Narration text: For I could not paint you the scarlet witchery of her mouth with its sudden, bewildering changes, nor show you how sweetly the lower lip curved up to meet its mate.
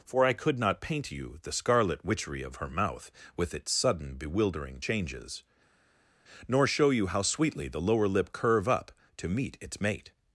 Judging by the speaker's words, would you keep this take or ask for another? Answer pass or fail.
fail